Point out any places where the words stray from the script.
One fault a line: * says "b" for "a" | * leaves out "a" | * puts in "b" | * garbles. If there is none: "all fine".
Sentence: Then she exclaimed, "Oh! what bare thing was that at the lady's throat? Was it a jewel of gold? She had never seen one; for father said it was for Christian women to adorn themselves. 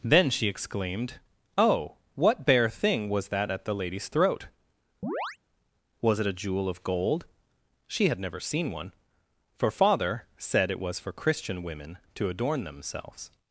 all fine